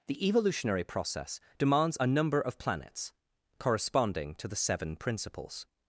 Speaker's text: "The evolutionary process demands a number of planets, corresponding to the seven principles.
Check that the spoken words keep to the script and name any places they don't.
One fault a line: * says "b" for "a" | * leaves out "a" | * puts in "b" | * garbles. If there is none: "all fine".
all fine